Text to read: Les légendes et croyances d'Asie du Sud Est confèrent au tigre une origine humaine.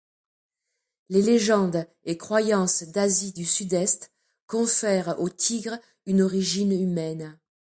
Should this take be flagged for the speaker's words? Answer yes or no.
no